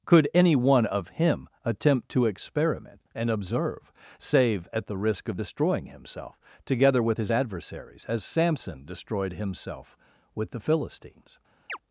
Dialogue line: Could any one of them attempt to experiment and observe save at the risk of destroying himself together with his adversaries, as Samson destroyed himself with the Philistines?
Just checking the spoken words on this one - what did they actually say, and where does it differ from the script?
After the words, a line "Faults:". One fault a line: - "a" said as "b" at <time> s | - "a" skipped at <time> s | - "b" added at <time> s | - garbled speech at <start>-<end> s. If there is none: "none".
Could any one of him attempt to experiment and observe save at the risk of destroying himself together with his adversaries, as Samson destroyed himself with the Philistines?
Faults:
- "them" said as "him" at 1.1 s